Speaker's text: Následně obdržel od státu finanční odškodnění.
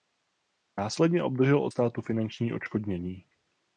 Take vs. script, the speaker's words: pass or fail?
pass